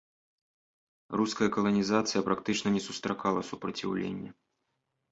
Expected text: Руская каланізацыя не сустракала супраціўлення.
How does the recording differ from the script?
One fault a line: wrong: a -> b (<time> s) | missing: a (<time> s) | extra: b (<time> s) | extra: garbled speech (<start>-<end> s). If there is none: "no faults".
extra: практычна (2.3 s)